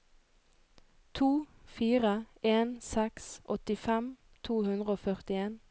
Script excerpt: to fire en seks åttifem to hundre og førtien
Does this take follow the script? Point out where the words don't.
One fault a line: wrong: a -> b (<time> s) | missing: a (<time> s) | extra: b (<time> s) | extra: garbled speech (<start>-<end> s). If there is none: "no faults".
no faults